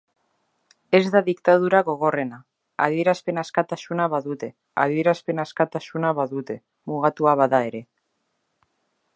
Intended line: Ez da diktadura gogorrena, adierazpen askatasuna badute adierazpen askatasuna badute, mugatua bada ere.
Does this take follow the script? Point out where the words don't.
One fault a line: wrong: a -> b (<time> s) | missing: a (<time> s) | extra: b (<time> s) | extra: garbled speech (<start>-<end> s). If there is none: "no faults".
no faults